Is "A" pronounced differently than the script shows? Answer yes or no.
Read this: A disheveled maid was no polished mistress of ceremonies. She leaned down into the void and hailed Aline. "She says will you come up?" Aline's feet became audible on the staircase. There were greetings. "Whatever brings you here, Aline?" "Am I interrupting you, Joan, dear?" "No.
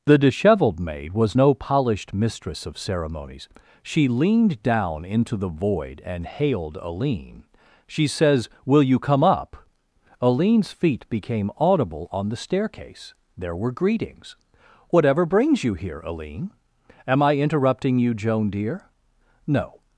yes